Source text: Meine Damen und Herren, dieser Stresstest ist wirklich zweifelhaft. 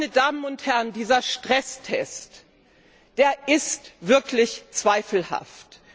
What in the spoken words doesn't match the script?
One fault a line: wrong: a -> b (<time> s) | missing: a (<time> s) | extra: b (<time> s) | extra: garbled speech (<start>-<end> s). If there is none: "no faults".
no faults